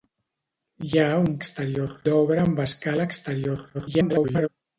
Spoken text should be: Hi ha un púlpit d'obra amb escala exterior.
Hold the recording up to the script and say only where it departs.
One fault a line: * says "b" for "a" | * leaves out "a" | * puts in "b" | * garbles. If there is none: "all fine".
* says "exterior" for "púlpit"
* garbles